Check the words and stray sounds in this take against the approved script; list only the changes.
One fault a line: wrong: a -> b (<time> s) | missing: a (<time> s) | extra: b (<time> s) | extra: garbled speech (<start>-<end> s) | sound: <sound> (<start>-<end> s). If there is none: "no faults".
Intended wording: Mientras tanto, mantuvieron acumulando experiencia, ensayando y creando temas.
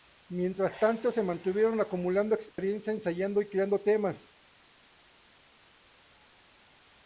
extra: se (1.1 s)
sound: dropout (2.5-2.6 s)